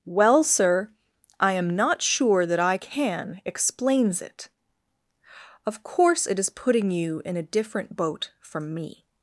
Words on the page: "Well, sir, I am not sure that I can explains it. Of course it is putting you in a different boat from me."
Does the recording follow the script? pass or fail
pass